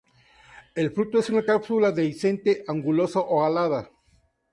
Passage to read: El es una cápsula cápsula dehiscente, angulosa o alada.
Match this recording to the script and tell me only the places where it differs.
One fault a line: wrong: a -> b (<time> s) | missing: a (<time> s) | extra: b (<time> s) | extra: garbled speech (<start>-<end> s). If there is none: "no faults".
extra: fruto (0.9 s)
missing: cápsula (1.9 s)